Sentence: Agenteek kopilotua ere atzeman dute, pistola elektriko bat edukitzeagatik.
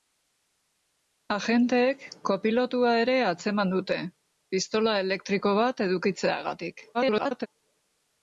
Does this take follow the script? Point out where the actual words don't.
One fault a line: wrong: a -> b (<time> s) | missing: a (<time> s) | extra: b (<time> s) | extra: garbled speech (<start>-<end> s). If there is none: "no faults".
extra: garbled speech (6.9-7.5 s)